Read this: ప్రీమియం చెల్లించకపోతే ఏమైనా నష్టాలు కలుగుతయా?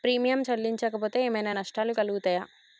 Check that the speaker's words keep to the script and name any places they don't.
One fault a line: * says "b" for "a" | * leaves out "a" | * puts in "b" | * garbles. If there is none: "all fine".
all fine